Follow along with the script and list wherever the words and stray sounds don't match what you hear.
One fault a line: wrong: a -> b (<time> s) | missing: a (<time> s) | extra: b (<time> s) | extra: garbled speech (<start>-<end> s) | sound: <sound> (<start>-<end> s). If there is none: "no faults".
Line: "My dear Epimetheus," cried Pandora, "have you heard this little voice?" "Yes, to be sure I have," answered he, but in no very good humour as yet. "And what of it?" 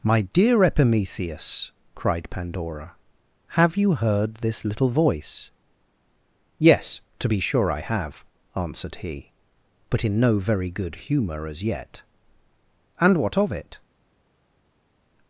no faults